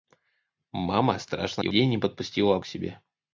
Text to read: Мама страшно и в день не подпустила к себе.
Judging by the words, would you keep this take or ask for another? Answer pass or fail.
pass